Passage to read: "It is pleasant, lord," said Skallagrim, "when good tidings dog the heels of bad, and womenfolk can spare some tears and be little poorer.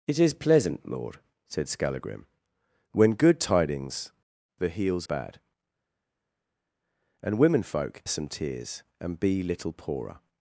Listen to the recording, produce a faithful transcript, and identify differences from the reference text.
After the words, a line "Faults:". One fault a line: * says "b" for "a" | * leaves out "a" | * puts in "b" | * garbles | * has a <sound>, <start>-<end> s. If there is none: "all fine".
"It is pleasant, lord," said Skallagrim, "when good tidings the heels bad, and womenfolk some tears and be little poorer.
Faults:
* leaves out "dog"
* leaves out "of"
* leaves out "can spare"